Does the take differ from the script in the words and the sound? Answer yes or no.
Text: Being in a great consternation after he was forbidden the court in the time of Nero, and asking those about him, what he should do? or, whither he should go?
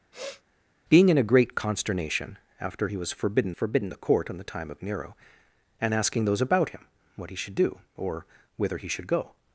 yes